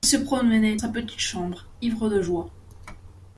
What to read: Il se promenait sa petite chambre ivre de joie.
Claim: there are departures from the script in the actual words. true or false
false